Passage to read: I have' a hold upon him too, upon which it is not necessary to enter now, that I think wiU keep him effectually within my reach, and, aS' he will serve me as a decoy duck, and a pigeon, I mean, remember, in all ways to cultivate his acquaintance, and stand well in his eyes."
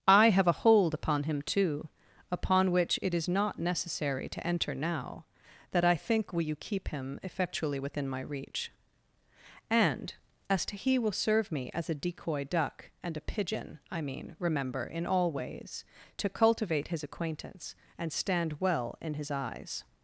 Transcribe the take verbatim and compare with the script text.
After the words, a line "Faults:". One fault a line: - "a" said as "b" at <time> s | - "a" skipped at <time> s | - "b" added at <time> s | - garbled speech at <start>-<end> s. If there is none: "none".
I have' a hold upon him too, upon which it is not necessary to enter now, that I think will you keep him effectually within my reach, and, aS' to he will serve me as a decoy duck, and a pigeon, I mean, remember, in all ways to cultivate his acquaintance, and stand well in his eyes."
Faults:
- "wiU" said as "will you" at 6.3 s
- "to" added at 10.7 s